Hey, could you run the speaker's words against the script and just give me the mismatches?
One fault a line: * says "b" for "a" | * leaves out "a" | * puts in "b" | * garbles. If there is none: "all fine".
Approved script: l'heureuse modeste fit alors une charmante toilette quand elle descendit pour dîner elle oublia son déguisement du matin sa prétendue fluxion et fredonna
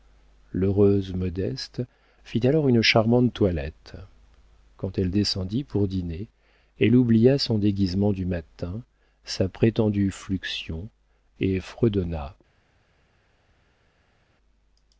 all fine